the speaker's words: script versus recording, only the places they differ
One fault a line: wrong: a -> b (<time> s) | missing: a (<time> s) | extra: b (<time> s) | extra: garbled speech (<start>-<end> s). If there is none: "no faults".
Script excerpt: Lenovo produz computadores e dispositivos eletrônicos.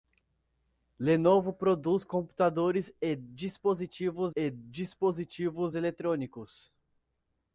extra: e dispositivos (4.3 s)